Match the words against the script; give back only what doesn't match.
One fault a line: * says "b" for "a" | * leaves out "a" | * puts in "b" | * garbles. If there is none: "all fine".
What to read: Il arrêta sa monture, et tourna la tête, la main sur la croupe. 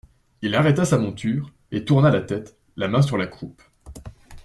all fine